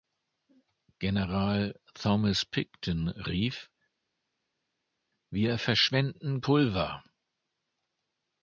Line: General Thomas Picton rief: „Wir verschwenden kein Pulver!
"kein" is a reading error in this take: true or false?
true